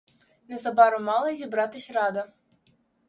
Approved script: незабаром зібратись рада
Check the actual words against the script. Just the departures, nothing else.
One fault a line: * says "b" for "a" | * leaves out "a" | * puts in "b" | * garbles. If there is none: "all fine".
* puts in "мала"